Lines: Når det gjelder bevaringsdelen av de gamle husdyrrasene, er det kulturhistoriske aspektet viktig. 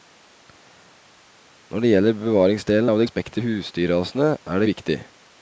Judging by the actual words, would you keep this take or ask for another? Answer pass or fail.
fail